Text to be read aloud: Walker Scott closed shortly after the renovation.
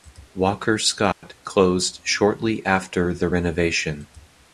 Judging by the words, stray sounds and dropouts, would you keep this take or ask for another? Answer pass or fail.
fail